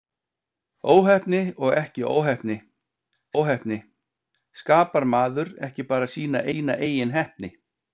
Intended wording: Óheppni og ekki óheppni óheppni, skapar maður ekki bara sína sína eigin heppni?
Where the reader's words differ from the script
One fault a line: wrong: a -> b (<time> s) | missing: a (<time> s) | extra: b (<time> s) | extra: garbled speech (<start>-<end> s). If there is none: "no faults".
no faults